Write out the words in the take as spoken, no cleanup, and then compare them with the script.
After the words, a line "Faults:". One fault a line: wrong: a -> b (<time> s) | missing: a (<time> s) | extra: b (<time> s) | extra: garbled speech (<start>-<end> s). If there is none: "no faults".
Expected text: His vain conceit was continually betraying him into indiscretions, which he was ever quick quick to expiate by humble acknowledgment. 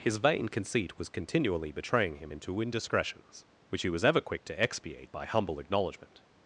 His vain conceit was continually betraying him into indiscretions, which he was ever quick to expiate by humble acknowledgment.
Faults:
missing: quick (4.5 s)